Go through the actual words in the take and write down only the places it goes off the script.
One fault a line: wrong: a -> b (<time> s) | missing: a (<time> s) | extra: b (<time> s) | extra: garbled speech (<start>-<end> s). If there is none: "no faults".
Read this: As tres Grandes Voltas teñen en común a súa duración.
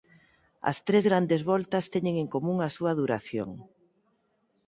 no faults